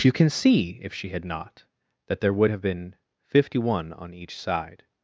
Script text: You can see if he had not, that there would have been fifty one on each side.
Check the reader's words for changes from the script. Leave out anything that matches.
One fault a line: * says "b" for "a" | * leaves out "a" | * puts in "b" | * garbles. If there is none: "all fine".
* says "she" for "he"